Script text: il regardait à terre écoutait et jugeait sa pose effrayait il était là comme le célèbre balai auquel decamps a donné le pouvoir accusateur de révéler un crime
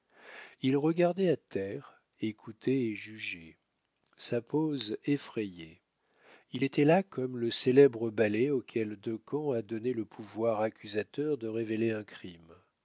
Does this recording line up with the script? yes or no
yes